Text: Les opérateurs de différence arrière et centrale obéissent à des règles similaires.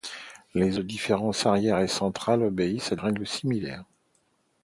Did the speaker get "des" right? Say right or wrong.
wrong